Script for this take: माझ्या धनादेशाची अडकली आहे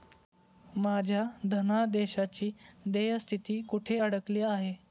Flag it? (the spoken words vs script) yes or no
yes